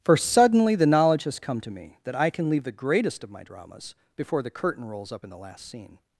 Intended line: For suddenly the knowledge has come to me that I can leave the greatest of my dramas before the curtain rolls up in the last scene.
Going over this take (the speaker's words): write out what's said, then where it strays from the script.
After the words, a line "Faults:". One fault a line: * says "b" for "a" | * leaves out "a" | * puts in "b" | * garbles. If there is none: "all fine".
For suddenly the knowledge has come to me that I can leave the greatest of my dramas before the curtain rolls up in the last scene.
Faults:
all fine